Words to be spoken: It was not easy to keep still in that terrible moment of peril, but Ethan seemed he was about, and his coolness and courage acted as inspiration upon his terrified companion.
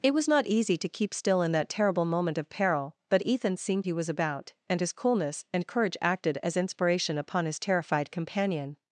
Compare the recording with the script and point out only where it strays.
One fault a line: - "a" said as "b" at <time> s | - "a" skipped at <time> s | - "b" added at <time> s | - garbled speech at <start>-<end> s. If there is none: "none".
none